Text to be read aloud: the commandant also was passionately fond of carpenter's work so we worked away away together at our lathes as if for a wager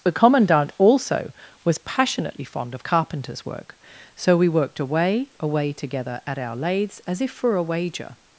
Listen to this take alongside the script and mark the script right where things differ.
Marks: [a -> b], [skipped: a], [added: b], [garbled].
the commandant also was passionately fond of carpenter's work so we worked away away together at our lathes as if for a wager